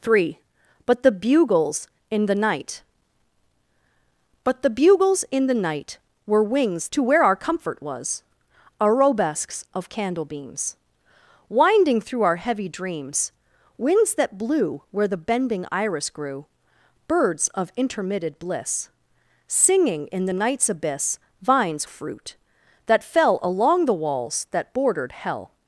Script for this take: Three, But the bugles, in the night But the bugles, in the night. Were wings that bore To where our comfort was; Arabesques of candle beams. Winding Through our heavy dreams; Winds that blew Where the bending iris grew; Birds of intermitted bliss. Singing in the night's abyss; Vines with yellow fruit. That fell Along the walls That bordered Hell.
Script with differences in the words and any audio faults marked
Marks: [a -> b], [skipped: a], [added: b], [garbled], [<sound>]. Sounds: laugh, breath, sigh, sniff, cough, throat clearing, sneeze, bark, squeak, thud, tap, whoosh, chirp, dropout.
Three, But the bugles, in the night But the bugles, in the night. Were wings [skipped: that bore] To where our comfort was; Arabesques of candle beams. Winding Through our heavy dreams; Winds that blew Where the bending iris grew; Birds of intermitted bliss. Singing in the night's abyss; Vines [skipped: with yellow] fruit. That fell Along the walls That bordered Hell.